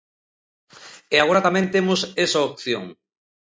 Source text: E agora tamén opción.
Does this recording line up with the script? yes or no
no